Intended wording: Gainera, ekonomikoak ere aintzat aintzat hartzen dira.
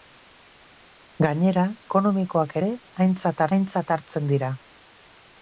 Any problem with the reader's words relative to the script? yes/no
no